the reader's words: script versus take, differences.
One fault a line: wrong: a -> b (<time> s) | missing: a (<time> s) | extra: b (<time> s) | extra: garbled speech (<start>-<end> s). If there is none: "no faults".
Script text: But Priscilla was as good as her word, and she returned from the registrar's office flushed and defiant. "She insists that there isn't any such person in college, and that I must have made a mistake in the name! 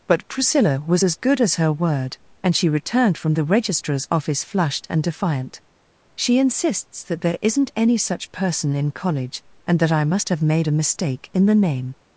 no faults